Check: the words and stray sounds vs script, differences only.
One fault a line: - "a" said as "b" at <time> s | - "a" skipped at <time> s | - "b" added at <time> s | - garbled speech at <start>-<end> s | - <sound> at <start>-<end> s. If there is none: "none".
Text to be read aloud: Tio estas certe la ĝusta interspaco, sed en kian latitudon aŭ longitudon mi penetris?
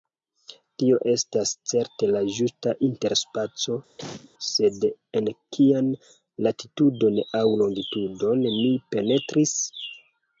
- cough at 4.0-4.3 s